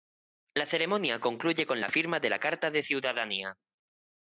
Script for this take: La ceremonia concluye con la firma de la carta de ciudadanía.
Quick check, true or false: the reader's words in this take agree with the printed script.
true